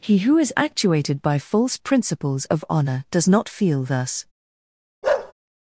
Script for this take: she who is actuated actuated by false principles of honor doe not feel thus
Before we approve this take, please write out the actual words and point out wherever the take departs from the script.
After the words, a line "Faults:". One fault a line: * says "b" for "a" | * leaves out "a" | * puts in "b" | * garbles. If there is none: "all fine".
he who is actuated by false principles of honor does not feel thus
Faults:
* says "he" for "she"
* leaves out "actuated"
* says "does" for "doe"